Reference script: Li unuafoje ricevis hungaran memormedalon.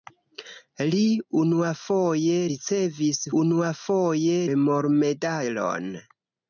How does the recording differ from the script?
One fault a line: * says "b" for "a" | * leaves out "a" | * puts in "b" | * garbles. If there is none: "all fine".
* says "unuafoje" for "hungaran"